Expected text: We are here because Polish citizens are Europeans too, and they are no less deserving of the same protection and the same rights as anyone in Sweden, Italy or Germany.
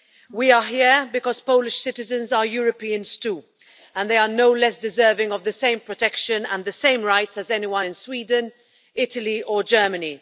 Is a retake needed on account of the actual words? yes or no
no